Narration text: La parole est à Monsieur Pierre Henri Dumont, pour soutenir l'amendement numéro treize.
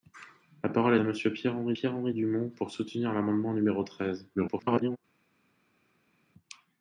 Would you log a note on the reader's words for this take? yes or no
yes